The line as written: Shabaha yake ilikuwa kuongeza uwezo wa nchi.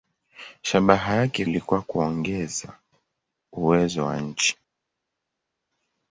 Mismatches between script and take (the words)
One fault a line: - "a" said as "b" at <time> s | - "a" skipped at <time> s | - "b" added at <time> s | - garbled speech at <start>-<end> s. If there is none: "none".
none